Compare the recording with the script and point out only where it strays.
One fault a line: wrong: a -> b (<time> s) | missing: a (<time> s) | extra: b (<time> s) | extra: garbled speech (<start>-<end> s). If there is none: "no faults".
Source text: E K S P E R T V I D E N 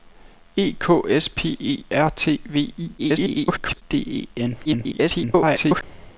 extra: garbled speech (3.0-3.8 s)
extra: garbled speech (4.6-5.8 s)